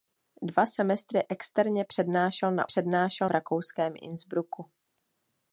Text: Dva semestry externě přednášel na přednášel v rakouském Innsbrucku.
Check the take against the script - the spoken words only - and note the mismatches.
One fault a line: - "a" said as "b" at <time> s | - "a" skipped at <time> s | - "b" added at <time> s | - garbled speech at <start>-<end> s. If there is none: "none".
none